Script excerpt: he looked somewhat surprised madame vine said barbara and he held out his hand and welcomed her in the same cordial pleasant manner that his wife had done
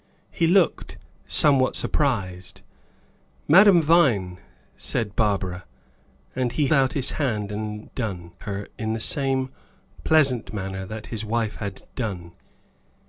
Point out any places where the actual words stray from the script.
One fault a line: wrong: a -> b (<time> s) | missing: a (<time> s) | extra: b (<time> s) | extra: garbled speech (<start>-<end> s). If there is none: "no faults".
missing: held (6.7 s)
wrong: welcomed -> done (8.0 s)
missing: cordial (9.5 s)